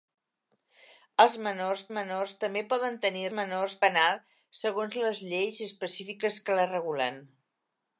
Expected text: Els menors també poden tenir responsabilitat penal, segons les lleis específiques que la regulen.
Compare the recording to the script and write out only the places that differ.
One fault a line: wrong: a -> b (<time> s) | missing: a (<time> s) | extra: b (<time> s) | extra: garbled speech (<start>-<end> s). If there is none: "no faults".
extra: menors (2.0 s)
wrong: responsabilitat -> menors (3.4 s)